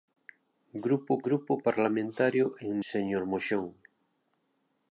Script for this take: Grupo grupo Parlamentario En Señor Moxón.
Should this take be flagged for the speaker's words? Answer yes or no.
no